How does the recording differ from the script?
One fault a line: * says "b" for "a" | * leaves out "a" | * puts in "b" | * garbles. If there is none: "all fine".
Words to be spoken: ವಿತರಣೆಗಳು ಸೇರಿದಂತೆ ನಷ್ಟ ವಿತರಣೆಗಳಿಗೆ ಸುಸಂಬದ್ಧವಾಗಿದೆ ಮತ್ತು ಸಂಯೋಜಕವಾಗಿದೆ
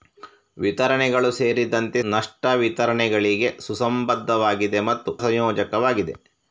all fine